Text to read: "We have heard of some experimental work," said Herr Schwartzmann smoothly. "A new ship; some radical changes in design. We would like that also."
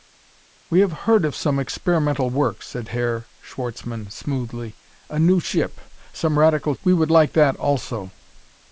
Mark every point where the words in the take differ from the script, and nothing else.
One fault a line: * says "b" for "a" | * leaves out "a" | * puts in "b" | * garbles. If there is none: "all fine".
* leaves out "changes in design"